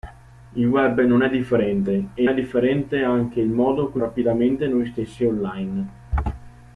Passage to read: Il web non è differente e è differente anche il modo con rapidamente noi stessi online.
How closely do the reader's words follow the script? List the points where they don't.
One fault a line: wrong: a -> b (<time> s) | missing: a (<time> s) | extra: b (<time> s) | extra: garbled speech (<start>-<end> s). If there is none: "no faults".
no faults